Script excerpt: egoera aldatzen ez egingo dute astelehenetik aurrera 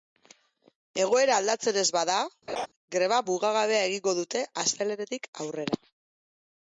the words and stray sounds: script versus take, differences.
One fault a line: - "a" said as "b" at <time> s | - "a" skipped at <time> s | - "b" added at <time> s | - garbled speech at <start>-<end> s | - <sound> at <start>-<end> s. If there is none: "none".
- "bada greba mugagabea" added at 2.0 s
- laugh at 2.5-2.7 s